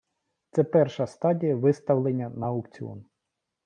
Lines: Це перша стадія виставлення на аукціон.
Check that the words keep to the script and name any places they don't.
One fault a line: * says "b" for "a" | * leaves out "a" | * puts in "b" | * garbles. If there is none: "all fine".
all fine